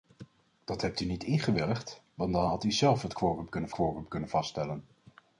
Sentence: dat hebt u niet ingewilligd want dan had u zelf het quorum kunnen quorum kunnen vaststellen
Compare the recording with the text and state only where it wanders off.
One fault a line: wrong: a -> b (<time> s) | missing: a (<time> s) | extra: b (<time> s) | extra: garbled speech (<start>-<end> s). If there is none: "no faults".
no faults